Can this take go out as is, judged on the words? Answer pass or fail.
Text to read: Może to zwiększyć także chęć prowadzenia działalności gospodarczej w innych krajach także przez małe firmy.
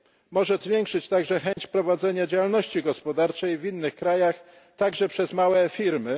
fail